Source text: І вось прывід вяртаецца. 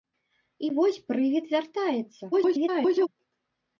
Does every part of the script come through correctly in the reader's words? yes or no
no